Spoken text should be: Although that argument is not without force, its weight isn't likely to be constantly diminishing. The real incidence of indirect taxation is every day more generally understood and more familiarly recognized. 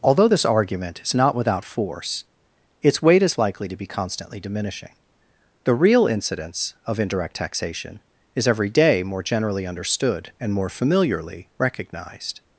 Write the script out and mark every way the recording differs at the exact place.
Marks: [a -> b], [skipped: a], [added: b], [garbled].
Although [that -> this] argument is not without force, its weight [isn't -> is] likely to be constantly diminishing. The real incidence of indirect taxation is every day more generally understood and more familiarly recognized.